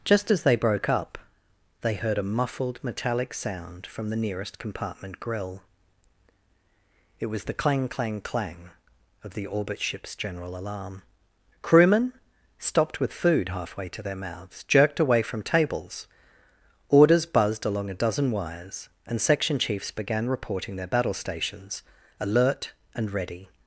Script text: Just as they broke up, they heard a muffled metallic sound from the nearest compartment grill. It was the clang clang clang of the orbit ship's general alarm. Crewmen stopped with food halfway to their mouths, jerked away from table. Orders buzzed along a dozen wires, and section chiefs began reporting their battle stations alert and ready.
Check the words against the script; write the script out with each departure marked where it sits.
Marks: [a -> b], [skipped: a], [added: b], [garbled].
Just as they broke up, they heard a muffled metallic sound from the nearest compartment grill. It was the clang clang clang of the orbit ship's general alarm. Crewmen stopped with food halfway to their mouths, jerked away from [table. -> tables] Orders buzzed along a dozen wires, and section chiefs began reporting their battle stations alert and ready.